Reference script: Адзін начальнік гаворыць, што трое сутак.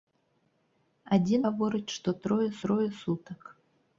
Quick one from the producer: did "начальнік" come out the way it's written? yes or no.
no